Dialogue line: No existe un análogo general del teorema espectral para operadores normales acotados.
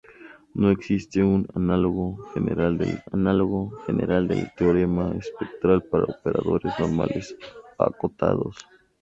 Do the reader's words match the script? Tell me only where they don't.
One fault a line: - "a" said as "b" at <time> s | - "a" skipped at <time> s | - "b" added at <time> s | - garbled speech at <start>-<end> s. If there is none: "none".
- "análogo general del" added at 3.1 s